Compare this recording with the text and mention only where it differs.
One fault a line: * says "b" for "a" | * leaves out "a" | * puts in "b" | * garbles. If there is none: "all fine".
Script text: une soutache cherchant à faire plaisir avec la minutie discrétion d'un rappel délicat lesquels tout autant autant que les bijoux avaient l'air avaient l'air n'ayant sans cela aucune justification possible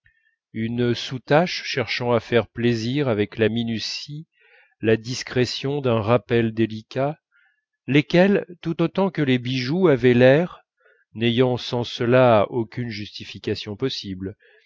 * puts in "la"
* leaves out "autant"
* leaves out "avaient l'air"